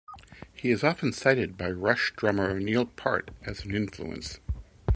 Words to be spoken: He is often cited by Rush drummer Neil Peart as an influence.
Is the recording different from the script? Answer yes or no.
no